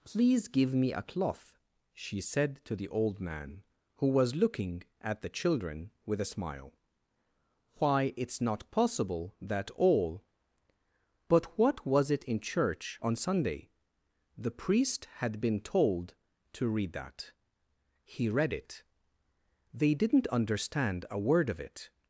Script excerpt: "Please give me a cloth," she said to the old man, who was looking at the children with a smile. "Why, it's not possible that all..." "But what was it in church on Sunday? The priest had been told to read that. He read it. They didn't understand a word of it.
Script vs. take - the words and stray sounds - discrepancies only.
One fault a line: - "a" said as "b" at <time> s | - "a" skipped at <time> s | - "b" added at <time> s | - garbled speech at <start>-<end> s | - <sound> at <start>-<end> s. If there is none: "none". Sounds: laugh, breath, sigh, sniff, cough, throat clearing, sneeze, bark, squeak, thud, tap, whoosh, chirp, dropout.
none